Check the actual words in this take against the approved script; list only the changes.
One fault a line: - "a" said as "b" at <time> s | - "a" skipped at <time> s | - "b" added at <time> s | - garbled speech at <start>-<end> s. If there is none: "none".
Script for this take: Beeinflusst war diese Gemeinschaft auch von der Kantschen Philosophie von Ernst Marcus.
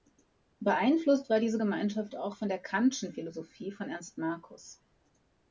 none